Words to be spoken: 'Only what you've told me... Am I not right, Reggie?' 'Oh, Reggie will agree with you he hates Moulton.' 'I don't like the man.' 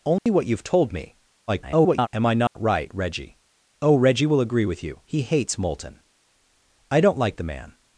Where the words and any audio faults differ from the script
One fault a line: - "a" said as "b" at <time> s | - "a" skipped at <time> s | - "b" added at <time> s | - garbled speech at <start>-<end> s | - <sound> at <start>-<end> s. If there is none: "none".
- dropout at 0.2-0.3 s
- garbled speech at 1.5-2.1 s
- dropout at 2.5-2.6 s